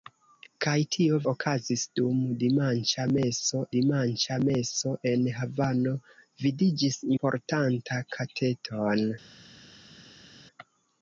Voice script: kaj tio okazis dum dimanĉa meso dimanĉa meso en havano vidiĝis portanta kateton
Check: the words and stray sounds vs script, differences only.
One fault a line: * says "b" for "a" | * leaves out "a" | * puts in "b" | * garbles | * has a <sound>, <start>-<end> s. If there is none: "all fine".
all fine